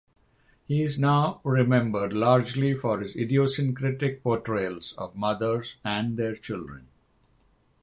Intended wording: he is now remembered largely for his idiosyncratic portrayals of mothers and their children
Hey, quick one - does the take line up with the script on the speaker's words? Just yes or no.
yes